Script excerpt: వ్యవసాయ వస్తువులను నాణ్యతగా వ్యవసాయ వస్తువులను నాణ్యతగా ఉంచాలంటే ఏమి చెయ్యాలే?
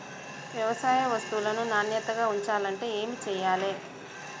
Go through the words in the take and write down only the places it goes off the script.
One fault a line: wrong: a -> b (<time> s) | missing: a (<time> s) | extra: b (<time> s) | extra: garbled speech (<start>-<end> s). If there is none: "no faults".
missing: వ్యవసాయ వస్తువులను నాణ్యతగా (2.3 s)